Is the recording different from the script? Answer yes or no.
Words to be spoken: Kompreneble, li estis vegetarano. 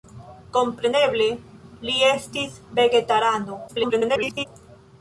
yes